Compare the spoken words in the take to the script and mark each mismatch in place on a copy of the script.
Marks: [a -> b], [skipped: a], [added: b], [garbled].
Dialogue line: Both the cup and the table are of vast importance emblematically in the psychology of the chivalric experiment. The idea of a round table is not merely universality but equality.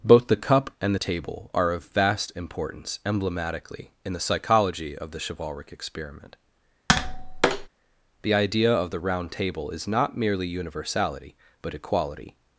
Both the cup and the table are of vast importance emblematically in the psychology of the chivalric experiment. The idea of [a -> the] round table is not merely universality but equality.